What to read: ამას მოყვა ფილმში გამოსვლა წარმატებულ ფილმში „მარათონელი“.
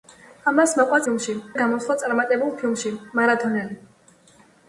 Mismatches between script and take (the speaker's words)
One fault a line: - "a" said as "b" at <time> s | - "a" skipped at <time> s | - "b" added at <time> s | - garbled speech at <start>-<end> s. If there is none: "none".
none